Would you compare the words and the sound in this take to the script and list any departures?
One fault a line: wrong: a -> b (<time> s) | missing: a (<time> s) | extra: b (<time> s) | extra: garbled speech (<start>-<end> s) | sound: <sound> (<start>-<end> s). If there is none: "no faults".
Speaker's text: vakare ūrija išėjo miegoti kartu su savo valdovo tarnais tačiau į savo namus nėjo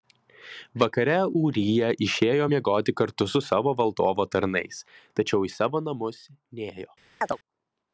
sound: chirp (7.2-7.4 s)